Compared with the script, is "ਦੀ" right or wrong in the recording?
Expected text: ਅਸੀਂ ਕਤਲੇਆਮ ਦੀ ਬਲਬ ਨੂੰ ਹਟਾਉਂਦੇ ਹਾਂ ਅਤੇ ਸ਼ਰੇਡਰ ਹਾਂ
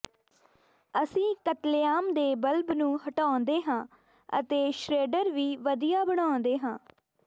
wrong